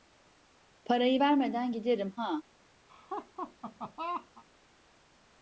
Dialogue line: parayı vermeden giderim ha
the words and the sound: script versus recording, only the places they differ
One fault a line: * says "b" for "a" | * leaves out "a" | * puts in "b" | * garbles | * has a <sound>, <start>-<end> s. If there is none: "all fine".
* has a laugh, 2.9-4.4 s